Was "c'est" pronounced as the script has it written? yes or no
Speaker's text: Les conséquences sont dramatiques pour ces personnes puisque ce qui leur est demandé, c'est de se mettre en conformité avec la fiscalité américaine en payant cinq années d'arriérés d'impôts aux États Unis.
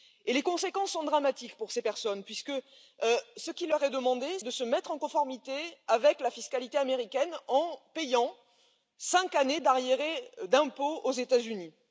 no